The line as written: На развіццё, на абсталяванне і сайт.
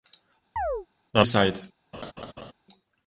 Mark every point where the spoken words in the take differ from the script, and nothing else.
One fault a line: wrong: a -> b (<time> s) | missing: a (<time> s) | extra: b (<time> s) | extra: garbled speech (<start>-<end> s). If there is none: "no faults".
missing: развіццё на абсталяванне (1.2 s)